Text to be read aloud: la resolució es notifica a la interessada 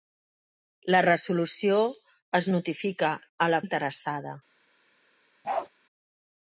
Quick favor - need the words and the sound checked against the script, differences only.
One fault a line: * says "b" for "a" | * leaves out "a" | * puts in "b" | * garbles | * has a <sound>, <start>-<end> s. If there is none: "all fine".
* has a bark, 5.4-5.7 s